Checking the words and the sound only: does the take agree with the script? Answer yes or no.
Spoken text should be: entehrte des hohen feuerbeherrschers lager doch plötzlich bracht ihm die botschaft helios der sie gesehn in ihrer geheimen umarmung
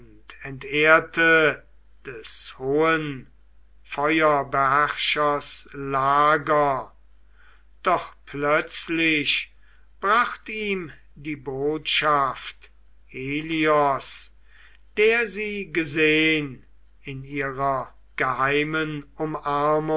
yes